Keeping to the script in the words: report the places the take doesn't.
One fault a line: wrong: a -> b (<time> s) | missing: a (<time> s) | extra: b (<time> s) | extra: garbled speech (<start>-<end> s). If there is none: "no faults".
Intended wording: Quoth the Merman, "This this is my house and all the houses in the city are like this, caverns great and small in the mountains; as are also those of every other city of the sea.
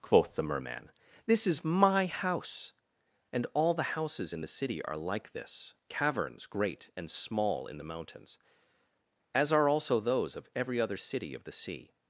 missing: this (1.4 s)